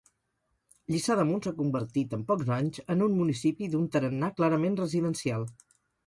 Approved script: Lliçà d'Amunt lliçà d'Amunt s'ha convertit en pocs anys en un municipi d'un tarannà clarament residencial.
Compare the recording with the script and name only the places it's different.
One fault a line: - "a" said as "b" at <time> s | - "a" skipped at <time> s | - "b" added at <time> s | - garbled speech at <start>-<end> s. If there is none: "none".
- "lliçà d'Amunt" skipped at 1.4 s